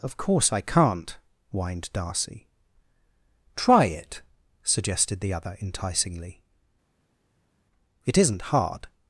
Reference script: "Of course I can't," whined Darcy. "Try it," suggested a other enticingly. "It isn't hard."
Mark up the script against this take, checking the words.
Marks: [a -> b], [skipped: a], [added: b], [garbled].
"Of course I can't," whined Darcy. "Try it," suggested [a -> the] other enticingly. "It isn't hard."